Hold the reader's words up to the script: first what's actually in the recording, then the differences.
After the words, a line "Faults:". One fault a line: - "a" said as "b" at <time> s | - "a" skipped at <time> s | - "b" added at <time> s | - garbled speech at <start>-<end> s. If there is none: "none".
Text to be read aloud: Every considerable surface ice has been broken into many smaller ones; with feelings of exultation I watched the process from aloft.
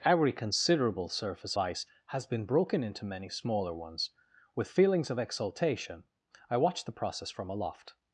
Every considerable surface ice has been broken into many smaller ones; with feelings of exultation I watched the process from aloft.
Faults:
none